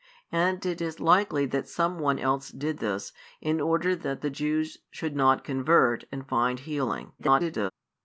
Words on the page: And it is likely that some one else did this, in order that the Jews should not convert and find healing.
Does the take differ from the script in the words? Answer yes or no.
yes